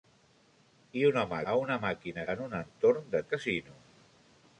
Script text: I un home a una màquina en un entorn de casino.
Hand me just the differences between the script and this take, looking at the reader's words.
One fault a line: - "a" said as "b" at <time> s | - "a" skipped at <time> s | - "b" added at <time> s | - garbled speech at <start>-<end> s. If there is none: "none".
none